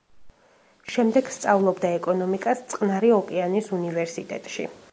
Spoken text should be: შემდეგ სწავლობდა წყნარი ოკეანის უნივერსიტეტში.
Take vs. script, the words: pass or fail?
fail